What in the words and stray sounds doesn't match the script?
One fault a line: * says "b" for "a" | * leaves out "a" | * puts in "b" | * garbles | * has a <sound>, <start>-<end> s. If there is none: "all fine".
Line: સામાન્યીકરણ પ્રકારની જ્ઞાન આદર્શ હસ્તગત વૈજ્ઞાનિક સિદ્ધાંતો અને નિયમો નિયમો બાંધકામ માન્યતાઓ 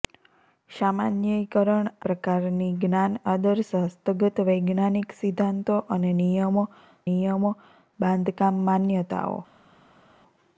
all fine